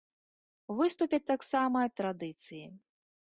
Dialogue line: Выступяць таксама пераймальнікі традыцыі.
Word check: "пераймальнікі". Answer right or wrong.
wrong